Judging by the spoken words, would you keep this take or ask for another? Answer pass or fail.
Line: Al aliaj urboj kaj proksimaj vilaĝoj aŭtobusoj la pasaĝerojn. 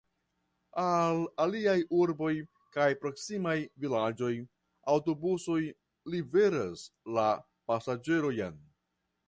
fail